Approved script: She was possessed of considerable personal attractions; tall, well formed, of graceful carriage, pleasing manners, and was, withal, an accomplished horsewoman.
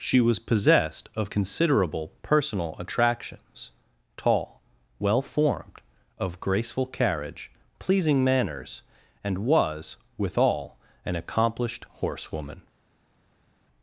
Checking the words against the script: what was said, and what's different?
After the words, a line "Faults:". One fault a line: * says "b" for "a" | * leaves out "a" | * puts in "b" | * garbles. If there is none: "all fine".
She was possessed of considerable personal attractions; tall, well formed, of graceful carriage, pleasing manners, and was, withal, an accomplished horsewoman.
Faults:
all fine